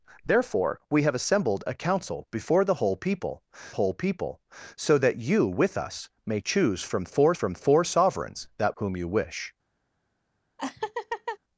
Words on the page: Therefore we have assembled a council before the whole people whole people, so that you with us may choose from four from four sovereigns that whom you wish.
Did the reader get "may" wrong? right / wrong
right